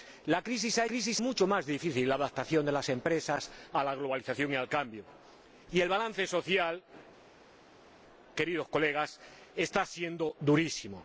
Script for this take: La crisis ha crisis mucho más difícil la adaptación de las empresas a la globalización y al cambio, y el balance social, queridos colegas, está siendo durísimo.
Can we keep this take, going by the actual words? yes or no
yes